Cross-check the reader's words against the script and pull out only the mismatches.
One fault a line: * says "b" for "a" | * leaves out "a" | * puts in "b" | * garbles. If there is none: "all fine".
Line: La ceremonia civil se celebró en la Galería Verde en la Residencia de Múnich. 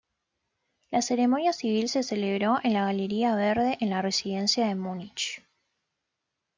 all fine